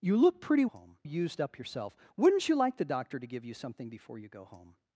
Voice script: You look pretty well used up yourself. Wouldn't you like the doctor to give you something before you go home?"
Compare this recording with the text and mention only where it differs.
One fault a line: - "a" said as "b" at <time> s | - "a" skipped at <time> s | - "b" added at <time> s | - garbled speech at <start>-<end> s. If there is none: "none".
- "well" said as "home" at 0.7 s